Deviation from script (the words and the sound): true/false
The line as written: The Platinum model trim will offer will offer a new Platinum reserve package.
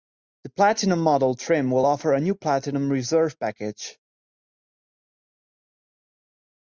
true